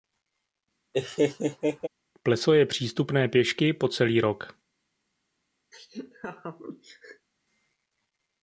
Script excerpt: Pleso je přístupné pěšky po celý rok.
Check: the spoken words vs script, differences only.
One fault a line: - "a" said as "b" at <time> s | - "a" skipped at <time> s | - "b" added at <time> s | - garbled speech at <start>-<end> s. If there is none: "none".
none